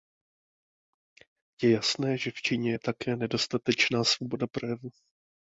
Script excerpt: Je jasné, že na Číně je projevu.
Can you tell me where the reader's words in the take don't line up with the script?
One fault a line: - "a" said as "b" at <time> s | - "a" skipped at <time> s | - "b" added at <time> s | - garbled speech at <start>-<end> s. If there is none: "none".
- "na" said as "v" at 2.3 s
- "také nedostatečná svoboda" added at 2.8 s